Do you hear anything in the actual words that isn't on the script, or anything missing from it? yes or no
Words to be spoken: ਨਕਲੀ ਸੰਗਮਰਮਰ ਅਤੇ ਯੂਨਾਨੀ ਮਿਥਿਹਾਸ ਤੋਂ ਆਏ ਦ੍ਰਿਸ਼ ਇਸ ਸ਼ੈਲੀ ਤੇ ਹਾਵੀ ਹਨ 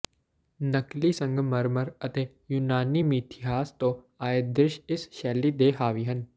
no